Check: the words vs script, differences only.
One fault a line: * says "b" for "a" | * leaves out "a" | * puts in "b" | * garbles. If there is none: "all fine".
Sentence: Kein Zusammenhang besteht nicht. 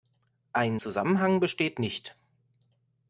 * says "Ein" for "Kein"